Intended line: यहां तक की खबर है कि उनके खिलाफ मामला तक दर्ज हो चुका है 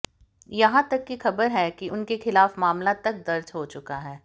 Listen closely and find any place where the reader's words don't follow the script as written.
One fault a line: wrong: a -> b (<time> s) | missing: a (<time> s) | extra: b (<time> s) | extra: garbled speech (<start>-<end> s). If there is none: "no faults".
no faults